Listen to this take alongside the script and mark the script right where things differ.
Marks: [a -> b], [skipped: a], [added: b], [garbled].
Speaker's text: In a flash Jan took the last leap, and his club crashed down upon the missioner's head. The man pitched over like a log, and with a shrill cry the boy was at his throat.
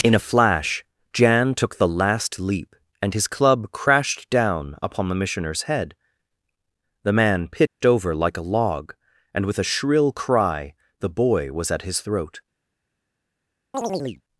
In a flash Jan took the last leap, and his club crashed down upon the missioner's head. The man pitched over like a log, and with a shrill cry the boy was at his throat.